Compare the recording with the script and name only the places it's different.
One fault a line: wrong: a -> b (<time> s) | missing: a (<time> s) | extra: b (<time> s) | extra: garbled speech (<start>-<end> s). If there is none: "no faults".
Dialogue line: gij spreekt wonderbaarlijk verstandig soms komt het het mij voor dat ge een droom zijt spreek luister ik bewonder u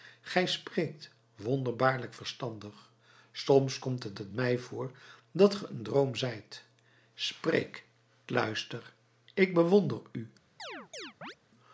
no faults